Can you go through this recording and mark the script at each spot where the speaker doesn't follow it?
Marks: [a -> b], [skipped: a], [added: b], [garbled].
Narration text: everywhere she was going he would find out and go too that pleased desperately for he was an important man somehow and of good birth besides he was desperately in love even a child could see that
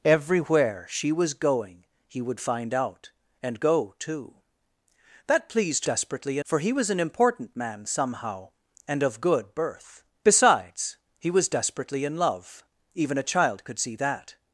everywhere she was going he would find out and go too that pleased desperately for he was an important man somehow and of good birth besides he was desperately in love even a child could see that